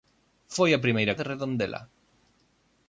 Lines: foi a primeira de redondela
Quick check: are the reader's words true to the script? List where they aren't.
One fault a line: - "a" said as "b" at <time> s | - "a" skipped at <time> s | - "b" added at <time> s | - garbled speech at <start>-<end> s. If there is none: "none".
none